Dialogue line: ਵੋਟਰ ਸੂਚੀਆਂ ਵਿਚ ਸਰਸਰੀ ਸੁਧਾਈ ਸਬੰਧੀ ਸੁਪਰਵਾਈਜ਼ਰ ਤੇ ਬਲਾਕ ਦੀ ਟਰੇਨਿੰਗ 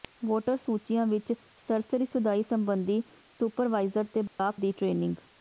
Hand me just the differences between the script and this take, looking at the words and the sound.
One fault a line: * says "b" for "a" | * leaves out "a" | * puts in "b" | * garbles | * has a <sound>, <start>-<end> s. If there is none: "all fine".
* has a dropout, 4.3-4.4 s